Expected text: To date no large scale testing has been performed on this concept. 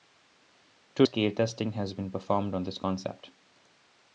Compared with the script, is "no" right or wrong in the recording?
wrong